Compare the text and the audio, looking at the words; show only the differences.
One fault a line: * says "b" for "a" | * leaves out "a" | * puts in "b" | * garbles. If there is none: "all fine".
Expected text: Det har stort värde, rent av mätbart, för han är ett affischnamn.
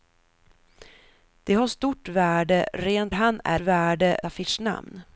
* leaves out "av mätbart för"
* says "värde" for "ett"